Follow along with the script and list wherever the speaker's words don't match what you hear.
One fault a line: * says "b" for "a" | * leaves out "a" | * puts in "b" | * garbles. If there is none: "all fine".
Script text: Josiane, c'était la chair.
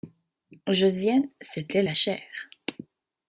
all fine